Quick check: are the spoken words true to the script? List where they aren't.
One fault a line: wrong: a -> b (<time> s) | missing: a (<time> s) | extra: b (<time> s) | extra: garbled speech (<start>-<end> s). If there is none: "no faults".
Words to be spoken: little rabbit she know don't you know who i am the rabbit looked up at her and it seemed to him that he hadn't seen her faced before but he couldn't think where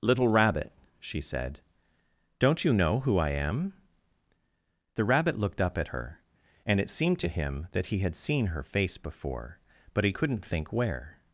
wrong: know -> said (1.2 s)
wrong: hadn't -> had (8.0 s)
wrong: faced -> face (8.6 s)